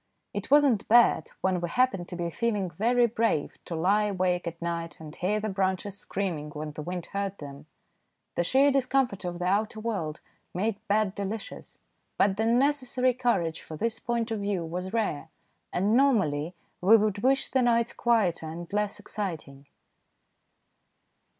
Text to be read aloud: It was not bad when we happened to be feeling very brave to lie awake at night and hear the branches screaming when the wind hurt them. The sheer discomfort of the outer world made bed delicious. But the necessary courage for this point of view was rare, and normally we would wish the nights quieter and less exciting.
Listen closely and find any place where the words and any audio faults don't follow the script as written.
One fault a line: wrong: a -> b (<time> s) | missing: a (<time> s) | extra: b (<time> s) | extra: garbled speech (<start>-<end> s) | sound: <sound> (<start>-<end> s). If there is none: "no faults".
no faults